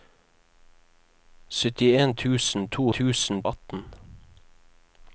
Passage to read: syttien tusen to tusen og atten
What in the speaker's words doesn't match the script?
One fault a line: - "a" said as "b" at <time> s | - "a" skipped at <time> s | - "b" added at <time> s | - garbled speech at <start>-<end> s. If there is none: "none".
none